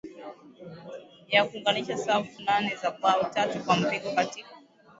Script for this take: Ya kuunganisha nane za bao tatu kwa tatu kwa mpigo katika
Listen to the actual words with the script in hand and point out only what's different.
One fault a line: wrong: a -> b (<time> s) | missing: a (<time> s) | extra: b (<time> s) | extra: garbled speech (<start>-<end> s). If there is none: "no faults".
extra: safu (2.0 s)
missing: tatu kwa (3.8 s)